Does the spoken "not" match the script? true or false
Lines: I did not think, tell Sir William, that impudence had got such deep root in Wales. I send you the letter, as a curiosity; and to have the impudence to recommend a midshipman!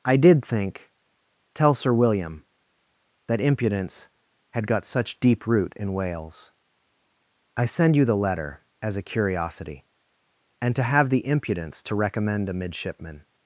false